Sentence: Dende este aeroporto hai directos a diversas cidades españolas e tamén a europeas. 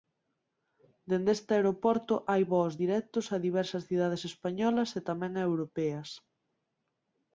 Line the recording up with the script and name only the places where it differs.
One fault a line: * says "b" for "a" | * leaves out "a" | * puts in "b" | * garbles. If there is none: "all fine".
* puts in "voos"